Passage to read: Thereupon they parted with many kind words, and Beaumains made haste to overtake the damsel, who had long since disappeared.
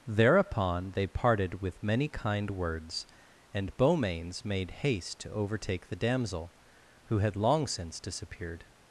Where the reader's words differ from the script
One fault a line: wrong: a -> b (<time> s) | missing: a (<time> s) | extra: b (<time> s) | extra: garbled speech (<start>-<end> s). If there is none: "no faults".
no faults